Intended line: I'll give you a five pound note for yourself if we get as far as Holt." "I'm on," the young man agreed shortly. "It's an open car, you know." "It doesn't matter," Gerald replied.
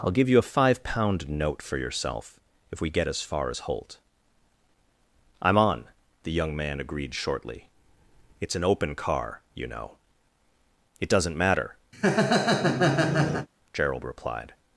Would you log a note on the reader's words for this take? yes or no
no